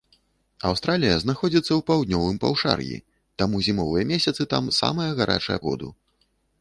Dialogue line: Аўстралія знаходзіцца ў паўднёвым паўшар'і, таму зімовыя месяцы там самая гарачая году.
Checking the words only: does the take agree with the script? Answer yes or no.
yes